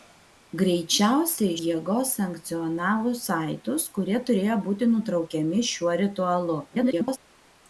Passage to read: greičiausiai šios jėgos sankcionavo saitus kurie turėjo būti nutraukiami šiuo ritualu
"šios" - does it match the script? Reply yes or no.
no